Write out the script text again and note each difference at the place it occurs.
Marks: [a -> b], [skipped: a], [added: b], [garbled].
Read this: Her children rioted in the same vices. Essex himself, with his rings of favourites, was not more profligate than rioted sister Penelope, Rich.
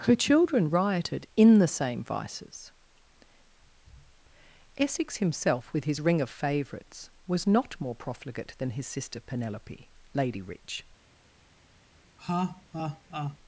Her children rioted in the same vices. Essex himself, with his [rings -> ring] of favourites, was not more profligate than [rioted -> his] sister Penelope, [added: Lady] Rich.